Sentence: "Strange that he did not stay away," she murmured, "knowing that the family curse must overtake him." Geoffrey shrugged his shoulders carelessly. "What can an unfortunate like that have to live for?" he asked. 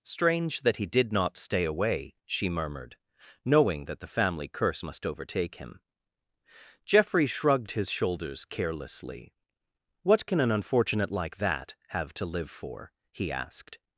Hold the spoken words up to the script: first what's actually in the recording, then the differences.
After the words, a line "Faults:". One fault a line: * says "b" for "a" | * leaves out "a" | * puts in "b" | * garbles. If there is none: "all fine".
"Strange that he did not stay away," she murmured, "knowing that the family curse must overtake him." Geoffrey shrugged his shoulders carelessly. "What can an unfortunate like that have to live for?" he asked.
Faults:
all fine